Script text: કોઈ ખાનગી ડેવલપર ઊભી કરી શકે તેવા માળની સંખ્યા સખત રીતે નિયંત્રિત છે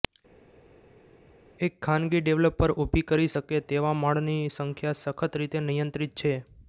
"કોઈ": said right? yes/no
no